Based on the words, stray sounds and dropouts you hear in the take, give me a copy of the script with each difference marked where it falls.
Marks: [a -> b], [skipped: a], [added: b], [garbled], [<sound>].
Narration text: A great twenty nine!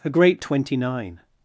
A great twenty nine!